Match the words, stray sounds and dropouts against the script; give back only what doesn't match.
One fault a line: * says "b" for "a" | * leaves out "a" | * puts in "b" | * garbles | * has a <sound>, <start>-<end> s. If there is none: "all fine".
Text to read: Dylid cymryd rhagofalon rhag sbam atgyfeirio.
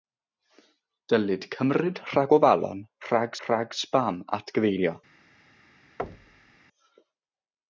* puts in "rhag"
* has a thud, 6.0-6.6 s